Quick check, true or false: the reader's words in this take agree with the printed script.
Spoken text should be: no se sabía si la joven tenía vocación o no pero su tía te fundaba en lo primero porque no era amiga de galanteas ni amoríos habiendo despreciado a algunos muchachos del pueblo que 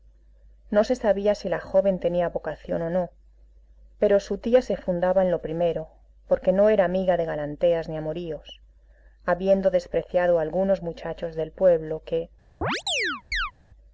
false